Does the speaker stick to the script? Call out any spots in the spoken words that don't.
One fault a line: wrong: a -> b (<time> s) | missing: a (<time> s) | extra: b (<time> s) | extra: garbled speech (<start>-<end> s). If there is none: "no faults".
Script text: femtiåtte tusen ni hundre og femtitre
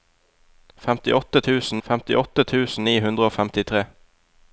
extra: femtiåtte tusen (1.9 s)